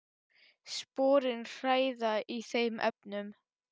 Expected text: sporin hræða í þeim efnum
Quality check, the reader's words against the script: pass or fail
pass